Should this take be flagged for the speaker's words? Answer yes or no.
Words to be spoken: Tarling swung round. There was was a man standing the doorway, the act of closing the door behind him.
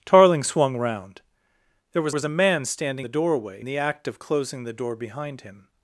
no